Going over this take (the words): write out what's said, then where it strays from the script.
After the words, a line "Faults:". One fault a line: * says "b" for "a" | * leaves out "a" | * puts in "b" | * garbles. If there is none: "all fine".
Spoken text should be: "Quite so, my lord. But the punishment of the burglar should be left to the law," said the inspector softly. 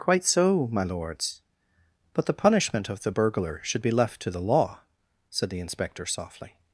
"Quite so, my lords. But the punishment of the burglar should be left to the law," said the inspector softly.
Faults:
* says "lords" for "lord"